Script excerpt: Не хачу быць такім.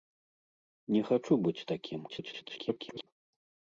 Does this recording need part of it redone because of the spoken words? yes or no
yes